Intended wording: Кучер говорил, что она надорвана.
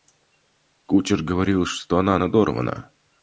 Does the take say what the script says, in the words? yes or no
yes